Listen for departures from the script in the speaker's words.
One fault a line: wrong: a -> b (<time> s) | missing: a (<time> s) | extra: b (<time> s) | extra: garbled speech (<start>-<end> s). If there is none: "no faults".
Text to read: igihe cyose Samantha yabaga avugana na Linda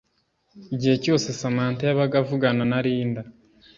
no faults